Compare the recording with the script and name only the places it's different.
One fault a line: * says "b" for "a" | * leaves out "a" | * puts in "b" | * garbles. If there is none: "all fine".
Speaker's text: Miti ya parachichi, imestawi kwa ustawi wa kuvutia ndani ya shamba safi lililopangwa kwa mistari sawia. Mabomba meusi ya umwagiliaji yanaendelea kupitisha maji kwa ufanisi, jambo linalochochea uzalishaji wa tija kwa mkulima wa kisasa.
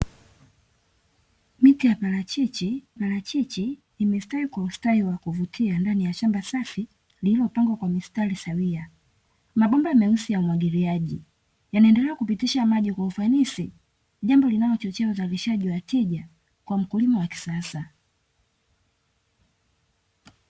* puts in "parachichi"